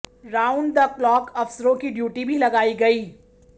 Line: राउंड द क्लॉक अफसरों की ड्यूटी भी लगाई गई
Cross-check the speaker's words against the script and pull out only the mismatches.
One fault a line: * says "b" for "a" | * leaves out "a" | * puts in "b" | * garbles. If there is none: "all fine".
all fine